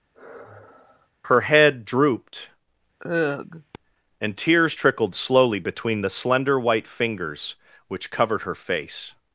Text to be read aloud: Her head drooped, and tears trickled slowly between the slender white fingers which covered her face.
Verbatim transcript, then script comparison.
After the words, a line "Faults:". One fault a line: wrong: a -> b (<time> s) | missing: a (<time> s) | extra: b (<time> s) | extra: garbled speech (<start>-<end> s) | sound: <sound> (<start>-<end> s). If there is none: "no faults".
Her head drooped, and tears trickled slowly between the slender white fingers which covered her face.
Faults:
sound: sigh (0.1-1.1 s)
sound: sigh (3.0-3.8 s)